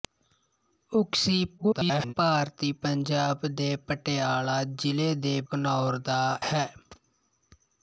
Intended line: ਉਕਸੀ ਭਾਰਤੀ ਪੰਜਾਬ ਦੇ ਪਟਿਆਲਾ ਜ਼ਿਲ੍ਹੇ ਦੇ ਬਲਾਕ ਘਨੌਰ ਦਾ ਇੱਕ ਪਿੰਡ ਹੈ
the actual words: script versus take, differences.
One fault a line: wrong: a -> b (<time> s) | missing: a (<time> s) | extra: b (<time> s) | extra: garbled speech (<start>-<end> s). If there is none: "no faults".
extra: garbled speech (1.6-2.1 s)
missing: ਬਲਾਕ (5.4 s)
missing: ਇੱਕ ਪਿੰਡ (6.2 s)